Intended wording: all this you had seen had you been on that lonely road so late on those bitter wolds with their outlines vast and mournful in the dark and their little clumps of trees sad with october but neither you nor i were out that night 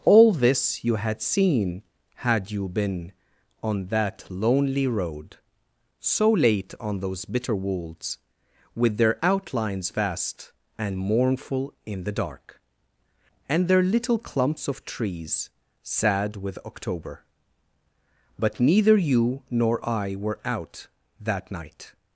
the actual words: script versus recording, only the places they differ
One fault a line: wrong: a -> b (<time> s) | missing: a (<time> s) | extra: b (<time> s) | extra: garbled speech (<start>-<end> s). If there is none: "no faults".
no faults